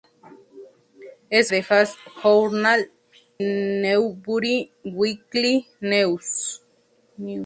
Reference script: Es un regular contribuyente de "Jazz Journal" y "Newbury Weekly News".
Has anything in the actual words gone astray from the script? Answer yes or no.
yes